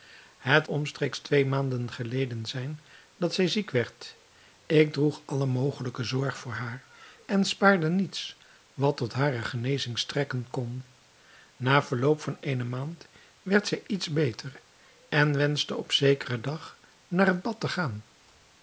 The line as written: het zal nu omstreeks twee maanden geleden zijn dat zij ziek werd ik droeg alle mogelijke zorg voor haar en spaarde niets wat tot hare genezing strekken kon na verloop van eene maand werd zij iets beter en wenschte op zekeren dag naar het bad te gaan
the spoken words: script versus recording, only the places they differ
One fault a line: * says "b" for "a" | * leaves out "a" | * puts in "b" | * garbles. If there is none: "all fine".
* leaves out "zal nu"